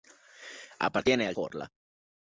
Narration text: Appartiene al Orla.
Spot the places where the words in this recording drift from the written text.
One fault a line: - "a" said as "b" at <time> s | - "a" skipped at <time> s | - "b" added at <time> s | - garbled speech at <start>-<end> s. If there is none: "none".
none